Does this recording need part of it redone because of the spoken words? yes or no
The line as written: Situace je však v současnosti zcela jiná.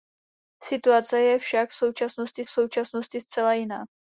yes